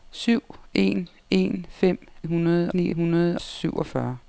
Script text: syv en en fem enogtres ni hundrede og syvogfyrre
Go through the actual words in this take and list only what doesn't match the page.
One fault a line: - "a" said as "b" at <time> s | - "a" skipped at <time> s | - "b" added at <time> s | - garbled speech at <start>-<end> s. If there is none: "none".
- "enogtres" said as "hundrede" at 2.2 s
- "og" skipped at 3.4 s